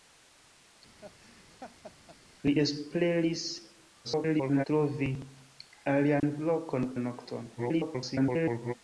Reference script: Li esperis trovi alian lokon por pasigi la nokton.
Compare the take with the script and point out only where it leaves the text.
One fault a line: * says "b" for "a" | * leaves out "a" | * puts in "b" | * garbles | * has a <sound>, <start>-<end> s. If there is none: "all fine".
* has a laugh, 1.0-2.2 s
* garbles
* has a dropout, 6.2-6.2 s
* leaves out "por pasigi"
* garbles